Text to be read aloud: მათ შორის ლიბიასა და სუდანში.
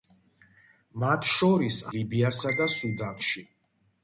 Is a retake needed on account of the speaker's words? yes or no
no